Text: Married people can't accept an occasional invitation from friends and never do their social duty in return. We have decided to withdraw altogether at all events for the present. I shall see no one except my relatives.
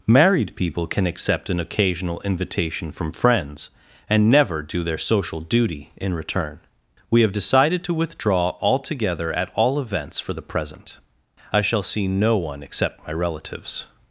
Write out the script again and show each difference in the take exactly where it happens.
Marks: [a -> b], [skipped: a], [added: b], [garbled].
Married people [can't -> can] accept an occasional invitation from friends and never do their social duty in return. We have decided to withdraw altogether at all events for the present. I shall see no one except my relatives.